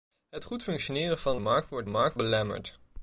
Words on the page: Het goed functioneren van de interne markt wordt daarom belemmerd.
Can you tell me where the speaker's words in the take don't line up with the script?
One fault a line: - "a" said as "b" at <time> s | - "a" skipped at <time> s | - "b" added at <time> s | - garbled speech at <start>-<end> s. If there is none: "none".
- "de interne" skipped at 1.4 s
- "daarom" said as "markt" at 1.8 s